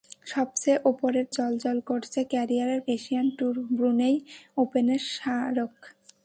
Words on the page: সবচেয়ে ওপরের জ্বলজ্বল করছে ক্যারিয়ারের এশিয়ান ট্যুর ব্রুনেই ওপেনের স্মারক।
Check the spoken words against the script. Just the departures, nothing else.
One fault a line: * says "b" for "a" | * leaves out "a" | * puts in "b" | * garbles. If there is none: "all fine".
all fine